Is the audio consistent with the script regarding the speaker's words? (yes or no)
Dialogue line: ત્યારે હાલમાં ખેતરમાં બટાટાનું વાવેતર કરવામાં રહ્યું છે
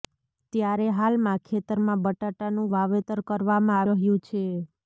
yes